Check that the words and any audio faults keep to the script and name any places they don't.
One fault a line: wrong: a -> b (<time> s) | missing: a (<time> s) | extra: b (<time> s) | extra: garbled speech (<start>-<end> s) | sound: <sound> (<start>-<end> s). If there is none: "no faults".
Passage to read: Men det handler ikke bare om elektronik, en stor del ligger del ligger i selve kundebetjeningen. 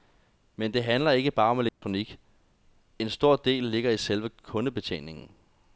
sound: dropout (1.7-1.8 s)
missing: del ligger (3.9 s)